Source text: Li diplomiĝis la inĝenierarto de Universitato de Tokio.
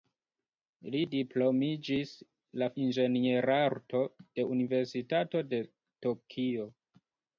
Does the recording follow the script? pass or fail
pass